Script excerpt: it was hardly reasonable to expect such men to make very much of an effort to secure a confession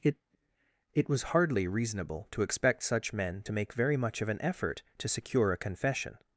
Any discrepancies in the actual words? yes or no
yes